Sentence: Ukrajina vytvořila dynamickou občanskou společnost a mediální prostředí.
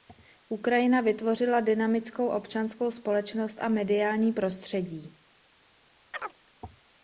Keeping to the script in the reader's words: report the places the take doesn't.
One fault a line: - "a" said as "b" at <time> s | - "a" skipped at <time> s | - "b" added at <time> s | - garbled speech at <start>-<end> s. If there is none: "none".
none